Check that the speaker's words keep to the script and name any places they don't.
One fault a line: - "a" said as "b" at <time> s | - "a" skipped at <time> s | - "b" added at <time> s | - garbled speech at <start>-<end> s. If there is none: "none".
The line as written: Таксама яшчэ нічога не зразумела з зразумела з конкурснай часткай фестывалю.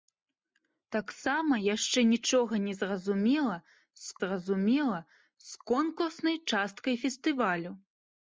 none